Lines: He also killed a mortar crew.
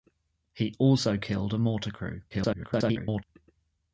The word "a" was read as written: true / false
true